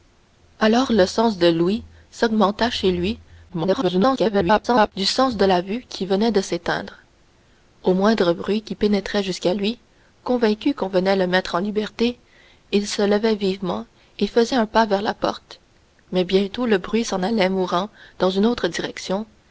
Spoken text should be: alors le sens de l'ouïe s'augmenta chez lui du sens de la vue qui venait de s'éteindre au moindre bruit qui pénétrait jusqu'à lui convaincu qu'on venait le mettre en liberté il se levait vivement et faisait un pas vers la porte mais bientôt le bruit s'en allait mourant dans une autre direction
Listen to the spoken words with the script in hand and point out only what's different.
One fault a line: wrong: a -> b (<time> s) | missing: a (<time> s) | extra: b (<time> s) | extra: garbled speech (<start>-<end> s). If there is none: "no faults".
extra: garbled speech (3.5-4.9 s)